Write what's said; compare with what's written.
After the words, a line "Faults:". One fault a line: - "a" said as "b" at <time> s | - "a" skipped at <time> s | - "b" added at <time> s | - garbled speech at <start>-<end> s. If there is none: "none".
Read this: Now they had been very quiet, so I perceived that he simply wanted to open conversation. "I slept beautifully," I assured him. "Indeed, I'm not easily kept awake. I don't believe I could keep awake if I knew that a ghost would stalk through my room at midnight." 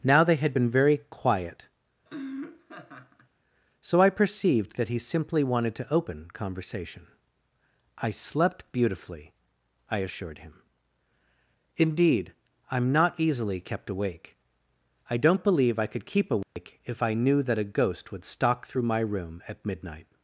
Now they had been very quiet, so I perceived that he simply wanted to open conversation. "I slept beautifully," I assured him. "Indeed, I'm not easily kept awake. I don't believe I could keep awake if I knew that a ghost would stalk through my room at midnight."
Faults:
none